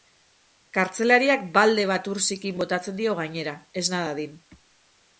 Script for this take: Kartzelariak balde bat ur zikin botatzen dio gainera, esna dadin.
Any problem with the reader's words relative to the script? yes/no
no